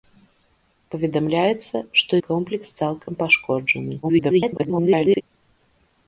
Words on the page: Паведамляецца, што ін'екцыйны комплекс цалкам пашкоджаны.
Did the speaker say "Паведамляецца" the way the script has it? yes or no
yes